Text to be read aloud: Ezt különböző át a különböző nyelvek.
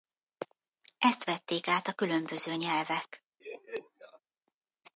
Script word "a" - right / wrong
right